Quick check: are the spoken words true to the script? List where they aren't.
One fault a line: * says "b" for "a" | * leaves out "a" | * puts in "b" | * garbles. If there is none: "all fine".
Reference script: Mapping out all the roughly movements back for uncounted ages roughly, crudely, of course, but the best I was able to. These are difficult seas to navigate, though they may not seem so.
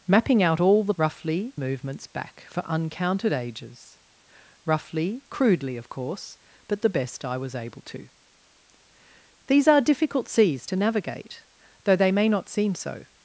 all fine